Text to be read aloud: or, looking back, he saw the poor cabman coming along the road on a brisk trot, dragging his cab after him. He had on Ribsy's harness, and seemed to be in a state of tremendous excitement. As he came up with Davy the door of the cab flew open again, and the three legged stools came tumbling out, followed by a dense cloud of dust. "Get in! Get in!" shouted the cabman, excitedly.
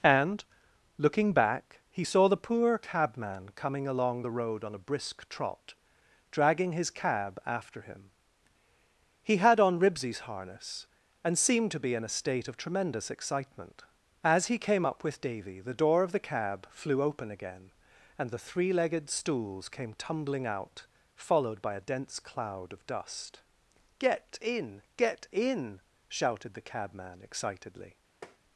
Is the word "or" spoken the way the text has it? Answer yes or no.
no